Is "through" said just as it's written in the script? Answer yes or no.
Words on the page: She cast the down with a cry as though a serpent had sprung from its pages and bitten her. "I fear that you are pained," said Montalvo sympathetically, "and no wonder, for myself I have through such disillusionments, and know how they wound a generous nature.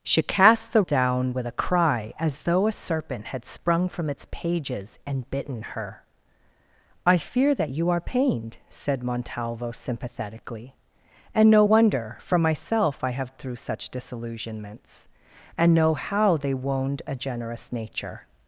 yes